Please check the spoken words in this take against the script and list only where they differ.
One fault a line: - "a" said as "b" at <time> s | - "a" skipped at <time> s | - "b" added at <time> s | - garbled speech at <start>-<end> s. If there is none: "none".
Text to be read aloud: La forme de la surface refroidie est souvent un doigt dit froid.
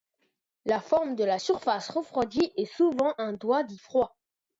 none